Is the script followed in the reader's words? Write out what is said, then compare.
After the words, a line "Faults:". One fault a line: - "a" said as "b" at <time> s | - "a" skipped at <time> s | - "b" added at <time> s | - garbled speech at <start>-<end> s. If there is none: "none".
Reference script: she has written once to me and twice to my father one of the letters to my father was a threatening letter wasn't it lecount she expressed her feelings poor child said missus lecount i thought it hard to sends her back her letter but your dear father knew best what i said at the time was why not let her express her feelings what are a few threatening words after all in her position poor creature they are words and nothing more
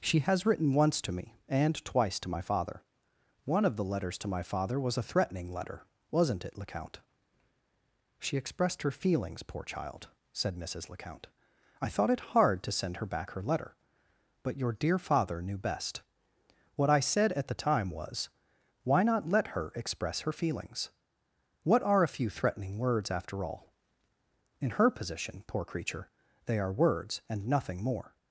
she has written once to me and twice to my father one of the letters to my father was a threatening letter wasn't it lecount she expressed her feelings poor child said missus lecount i thought it hard to send her back her letter but your dear father knew best what i said at the time was why not let her express her feelings what are a few threatening words after all in her position poor creature they are words and nothing more
Faults:
- "sends" said as "send" at 12.7 s